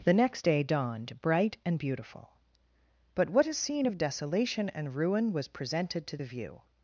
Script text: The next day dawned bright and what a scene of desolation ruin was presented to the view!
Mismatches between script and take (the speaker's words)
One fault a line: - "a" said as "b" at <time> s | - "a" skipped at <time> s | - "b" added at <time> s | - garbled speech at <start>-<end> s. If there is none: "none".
- "beautiful but" added at 1.8 s
- "and" added at 4.7 s